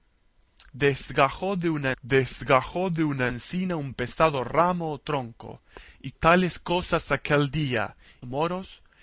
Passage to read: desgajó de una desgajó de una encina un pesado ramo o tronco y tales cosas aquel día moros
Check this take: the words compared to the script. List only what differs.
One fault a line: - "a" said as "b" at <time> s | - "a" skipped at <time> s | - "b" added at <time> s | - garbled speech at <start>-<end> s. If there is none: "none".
none